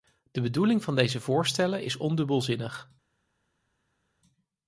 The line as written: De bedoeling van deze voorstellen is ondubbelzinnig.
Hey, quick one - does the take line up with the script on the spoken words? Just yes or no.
yes